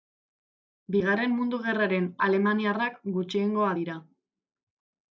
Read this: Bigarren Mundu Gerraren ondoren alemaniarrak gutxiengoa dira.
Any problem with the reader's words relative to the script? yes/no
yes